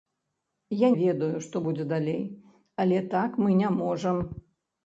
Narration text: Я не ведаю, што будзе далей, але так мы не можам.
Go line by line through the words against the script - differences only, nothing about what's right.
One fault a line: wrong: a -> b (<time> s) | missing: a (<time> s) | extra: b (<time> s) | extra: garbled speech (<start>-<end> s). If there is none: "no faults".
missing: не (0.9 s)